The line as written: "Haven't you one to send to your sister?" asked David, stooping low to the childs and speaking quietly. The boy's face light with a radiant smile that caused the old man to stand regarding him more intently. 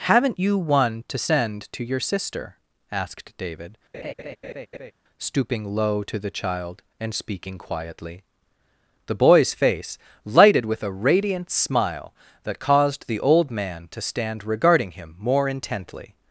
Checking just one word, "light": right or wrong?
wrong